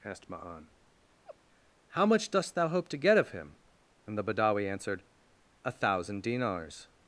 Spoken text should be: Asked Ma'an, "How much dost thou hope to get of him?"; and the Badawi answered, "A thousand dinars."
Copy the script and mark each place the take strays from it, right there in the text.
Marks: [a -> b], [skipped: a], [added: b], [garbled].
Asked Ma'an, "How much dost thou hope to get of him?"; and the Badawi answered, "A thousand dinars."